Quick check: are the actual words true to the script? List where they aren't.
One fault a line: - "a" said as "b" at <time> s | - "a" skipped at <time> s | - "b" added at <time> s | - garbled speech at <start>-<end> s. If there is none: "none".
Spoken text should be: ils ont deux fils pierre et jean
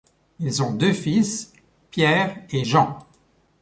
none